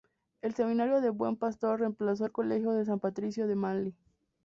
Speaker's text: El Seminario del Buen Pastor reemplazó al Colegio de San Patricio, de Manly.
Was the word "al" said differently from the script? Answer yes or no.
no